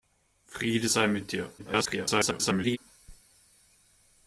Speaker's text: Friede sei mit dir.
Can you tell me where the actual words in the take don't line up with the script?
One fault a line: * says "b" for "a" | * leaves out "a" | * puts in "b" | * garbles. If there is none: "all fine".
* garbles